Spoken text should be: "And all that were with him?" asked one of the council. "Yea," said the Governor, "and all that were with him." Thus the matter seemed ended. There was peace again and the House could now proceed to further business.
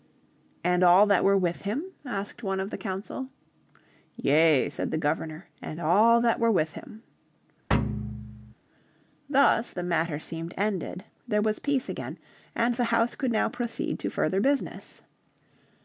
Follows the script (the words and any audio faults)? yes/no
no